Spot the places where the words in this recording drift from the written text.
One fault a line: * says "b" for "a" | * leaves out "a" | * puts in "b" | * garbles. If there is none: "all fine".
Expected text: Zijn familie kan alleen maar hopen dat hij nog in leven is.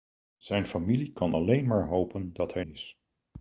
* leaves out "nog in leven"